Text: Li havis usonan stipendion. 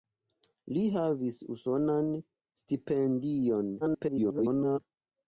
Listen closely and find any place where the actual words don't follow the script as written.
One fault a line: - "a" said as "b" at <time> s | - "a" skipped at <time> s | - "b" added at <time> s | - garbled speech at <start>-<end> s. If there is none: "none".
- garbled speech at 3.8-4.8 s